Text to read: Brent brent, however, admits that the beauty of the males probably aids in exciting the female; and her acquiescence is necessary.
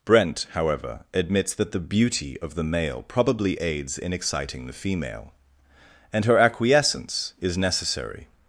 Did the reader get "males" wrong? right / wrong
wrong